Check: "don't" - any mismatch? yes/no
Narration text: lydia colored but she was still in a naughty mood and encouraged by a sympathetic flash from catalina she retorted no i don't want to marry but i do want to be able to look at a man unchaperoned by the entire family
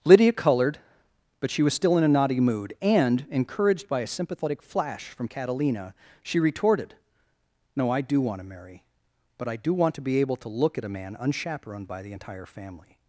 yes